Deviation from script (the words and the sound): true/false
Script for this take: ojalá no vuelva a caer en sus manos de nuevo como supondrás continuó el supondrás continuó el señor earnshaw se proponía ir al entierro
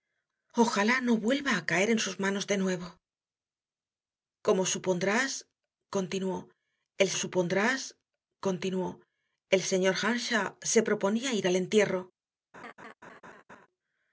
true